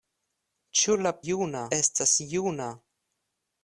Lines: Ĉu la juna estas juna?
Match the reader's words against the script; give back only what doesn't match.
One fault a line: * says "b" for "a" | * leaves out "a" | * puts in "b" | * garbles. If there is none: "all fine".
all fine